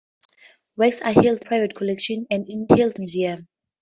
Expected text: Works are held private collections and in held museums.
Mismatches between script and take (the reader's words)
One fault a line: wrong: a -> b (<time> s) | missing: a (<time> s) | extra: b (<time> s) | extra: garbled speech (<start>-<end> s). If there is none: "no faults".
no faults